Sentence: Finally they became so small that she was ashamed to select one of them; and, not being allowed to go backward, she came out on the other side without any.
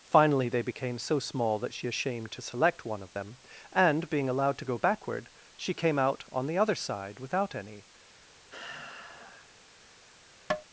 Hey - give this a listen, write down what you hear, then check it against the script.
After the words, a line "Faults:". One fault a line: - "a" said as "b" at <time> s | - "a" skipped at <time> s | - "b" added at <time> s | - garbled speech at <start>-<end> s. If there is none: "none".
Finally they became so small that she ashamed to select one of them; and, being allowed to go backward, she came out on the other side without any.
Faults:
- "was" skipped at 1.9 s
- "not" skipped at 4.1 s